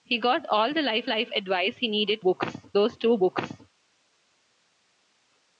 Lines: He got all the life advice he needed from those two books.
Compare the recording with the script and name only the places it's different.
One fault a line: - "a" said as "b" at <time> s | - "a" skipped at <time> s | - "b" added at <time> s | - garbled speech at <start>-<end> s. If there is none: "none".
- "life" added at 1.1 s
- "from" said as "books" at 2.2 s